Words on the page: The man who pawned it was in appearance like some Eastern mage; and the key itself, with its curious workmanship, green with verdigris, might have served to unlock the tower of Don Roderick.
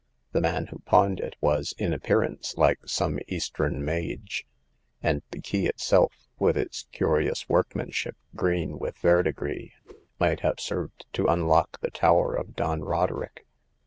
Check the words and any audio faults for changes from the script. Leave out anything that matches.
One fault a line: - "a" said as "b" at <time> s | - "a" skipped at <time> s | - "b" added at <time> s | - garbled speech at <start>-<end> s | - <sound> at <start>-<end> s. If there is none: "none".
- whoosh at 9.8-10.1 s